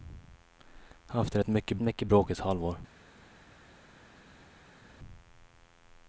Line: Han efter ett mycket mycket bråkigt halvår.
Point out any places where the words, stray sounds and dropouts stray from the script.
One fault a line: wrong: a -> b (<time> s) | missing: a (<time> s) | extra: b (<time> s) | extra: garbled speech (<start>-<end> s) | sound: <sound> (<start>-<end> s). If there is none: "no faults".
no faults